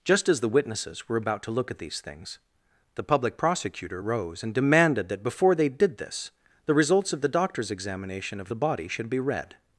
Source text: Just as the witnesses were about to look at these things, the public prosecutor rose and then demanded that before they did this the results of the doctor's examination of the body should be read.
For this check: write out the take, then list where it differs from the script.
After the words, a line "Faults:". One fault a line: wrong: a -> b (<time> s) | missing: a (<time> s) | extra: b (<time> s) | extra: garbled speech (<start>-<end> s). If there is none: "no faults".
Just as the witnesses were about to look at these things, the public prosecutor rose and demanded that before they did this the results of the doctor's examination of the body should be read.
Faults:
missing: then (4.5 s)